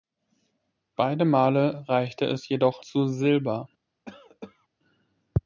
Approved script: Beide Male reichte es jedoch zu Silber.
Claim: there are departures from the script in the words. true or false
false